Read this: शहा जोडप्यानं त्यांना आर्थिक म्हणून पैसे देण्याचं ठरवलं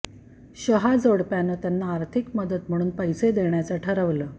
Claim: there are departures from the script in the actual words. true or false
true